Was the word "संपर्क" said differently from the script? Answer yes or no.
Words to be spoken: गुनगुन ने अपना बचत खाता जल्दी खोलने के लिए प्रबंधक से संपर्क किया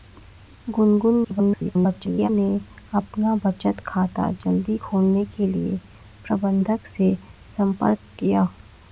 no